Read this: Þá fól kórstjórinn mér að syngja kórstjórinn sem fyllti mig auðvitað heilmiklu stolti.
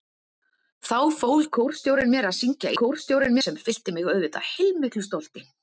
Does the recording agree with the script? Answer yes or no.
yes